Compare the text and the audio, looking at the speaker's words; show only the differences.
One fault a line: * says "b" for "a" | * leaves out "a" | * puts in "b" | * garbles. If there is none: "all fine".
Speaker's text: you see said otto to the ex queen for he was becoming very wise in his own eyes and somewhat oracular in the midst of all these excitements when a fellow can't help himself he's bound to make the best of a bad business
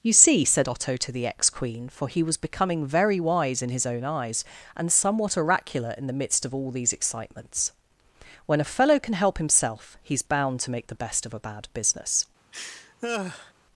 * says "can" for "can't"